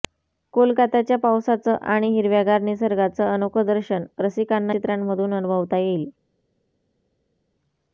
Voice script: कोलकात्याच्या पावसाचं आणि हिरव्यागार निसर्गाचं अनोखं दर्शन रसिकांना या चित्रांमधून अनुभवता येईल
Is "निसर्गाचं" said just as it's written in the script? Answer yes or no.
yes